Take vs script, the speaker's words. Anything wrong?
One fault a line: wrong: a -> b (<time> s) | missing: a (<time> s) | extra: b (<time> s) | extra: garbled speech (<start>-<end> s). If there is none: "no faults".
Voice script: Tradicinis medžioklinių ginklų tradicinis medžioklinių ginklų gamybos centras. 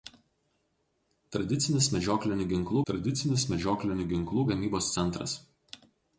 no faults